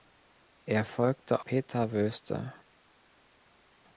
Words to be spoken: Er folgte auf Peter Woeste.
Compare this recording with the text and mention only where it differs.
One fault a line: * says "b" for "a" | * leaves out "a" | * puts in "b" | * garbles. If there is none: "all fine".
* leaves out "auf"